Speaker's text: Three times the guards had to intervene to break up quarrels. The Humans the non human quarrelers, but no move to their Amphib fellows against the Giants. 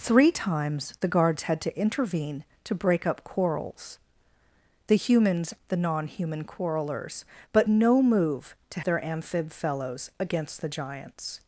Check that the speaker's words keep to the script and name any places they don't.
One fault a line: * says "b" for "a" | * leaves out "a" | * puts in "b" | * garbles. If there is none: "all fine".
all fine